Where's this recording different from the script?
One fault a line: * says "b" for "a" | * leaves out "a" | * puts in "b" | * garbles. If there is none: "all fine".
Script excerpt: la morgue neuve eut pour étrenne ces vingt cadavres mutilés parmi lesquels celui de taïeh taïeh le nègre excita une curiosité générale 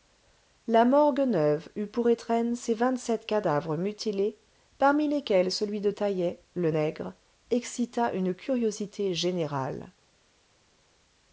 * puts in "sept"
* leaves out "taïeh"